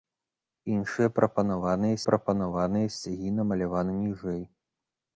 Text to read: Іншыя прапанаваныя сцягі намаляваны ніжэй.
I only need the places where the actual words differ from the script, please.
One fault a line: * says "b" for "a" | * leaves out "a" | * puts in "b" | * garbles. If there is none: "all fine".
* puts in "прапанаваныя"